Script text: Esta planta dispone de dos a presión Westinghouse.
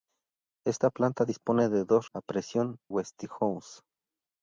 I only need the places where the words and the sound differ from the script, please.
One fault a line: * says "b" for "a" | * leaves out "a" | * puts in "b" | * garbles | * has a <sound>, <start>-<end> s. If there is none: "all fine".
all fine